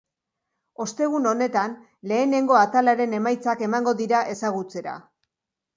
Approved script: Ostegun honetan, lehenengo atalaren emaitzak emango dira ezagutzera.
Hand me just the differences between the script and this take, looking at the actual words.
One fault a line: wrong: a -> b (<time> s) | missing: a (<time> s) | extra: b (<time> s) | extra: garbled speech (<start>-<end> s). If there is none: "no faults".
no faults